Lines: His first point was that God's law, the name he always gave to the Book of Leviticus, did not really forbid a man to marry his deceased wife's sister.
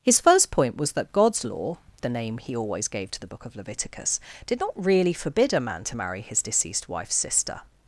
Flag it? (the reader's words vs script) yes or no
no